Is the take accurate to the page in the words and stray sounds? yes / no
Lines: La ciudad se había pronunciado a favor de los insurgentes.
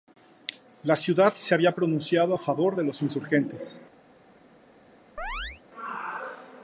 no